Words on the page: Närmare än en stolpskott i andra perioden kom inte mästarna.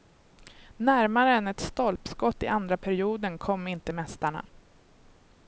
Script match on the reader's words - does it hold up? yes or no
no